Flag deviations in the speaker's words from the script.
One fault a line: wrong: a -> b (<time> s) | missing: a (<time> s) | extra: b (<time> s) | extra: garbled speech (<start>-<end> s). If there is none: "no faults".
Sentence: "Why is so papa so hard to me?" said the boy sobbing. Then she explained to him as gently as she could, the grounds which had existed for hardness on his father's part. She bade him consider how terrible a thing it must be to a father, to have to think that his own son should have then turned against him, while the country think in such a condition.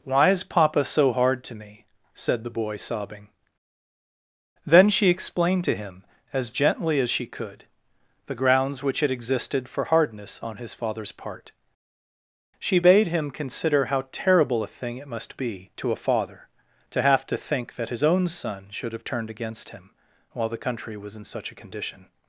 missing: so (0.4 s)
missing: then (19.0 s)
wrong: think -> was (21.0 s)